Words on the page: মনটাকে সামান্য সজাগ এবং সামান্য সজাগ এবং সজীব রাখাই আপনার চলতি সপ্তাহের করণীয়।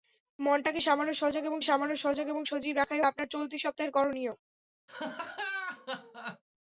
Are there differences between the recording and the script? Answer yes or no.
no